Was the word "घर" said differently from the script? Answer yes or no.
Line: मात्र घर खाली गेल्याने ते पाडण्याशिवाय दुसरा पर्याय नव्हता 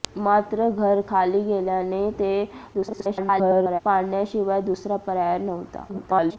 no